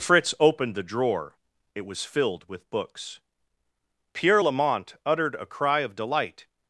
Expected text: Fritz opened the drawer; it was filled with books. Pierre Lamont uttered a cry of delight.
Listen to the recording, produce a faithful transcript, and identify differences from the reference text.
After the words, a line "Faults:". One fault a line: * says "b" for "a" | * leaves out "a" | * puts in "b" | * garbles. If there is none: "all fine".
Fritz opened the drawer; it was filled with books. Pierre Lamont uttered a cry of delight.
Faults:
all fine